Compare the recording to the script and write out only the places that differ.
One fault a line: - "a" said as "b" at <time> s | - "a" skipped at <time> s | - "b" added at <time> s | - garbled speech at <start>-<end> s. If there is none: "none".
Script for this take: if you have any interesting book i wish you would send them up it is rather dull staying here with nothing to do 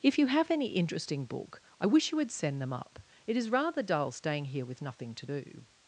none